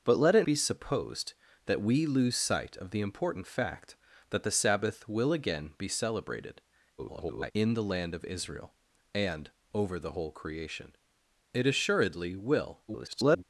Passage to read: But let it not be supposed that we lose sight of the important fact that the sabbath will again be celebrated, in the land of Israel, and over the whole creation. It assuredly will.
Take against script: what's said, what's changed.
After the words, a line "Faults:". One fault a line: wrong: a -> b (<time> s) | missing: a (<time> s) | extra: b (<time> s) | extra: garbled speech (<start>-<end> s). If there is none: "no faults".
But let it be supposed that we lose sight of the important fact that the sabbath will again be celebrated, [garbled] in the land of Israel, and over the whole creation. It assuredly will. [garbled]
Faults:
missing: not (0.5 s)
extra: garbled speech (7.0-7.5 s)
extra: garbled speech (12.9-13.4 s)